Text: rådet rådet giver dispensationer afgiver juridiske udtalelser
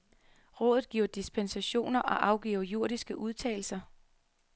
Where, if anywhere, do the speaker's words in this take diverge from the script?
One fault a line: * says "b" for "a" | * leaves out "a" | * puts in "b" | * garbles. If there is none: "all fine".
* leaves out "rådet"
* puts in "og"